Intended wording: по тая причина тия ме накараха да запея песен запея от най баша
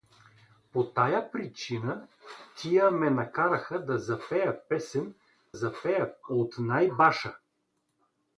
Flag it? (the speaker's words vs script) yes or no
no